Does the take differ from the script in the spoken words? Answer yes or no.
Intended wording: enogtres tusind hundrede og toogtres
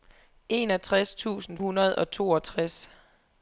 no